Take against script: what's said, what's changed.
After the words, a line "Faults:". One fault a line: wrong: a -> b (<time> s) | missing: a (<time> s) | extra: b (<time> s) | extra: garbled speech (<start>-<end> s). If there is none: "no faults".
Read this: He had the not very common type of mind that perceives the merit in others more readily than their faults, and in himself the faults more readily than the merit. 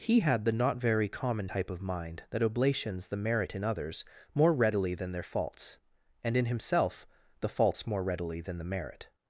He had the not very common type of mind that oblations the merit in others more readily than their faults, and in himself the faults more readily than the merit.
Faults:
wrong: perceives -> oblations (2.4 s)